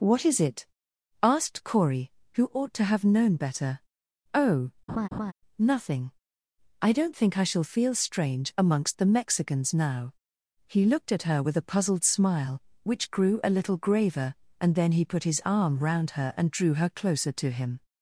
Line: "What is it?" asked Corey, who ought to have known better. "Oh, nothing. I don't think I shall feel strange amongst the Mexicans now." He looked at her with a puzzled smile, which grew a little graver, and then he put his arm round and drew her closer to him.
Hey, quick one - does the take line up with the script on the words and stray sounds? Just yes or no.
no